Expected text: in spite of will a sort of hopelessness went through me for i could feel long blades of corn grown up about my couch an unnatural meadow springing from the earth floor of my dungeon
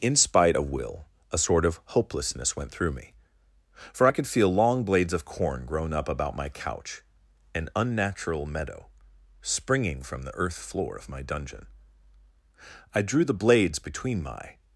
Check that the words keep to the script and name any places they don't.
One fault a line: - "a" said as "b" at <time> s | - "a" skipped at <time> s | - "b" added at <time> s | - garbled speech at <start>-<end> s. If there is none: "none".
- "i drew the blades between my" added at 12.9 s